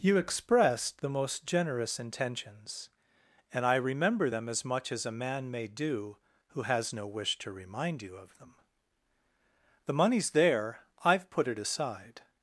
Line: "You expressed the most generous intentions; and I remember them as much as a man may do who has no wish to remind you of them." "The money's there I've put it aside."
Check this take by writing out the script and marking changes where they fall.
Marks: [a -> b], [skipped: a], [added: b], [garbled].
"You expressed the most generous intentions; and I remember them as much as a man may do who has no wish to remind you of them." "The money's there I've put it aside."